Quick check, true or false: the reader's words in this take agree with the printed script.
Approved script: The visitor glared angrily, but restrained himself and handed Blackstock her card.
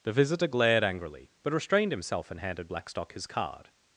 false